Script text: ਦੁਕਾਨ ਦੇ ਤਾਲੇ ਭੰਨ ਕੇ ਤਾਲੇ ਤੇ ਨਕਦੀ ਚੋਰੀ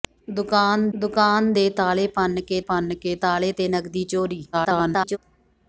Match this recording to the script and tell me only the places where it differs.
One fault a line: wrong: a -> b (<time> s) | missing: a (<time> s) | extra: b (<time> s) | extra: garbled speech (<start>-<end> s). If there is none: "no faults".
extra: ਦੁਕਾਨ (0.9 s)
extra: ਭੰਨ ਕੇ (2.6 s)
extra: garbled speech (4.5-5.2 s)